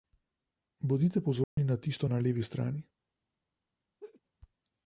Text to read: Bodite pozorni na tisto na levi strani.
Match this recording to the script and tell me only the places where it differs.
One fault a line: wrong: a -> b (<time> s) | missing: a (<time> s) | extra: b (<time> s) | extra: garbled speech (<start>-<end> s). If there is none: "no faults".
no faults